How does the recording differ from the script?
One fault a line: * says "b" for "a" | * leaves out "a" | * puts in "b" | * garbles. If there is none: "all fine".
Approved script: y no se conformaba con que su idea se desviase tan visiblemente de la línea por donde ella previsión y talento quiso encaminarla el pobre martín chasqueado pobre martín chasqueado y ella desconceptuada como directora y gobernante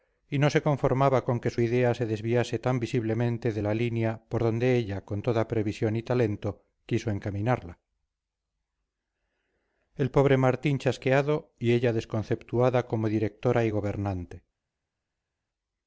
* puts in "con toda"
* leaves out "pobre martín chasqueado"